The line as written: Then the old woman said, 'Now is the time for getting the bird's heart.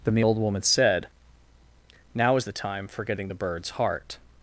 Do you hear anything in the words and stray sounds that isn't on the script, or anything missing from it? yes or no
no